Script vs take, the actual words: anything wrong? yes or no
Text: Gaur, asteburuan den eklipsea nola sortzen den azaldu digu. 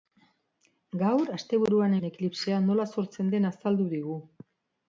no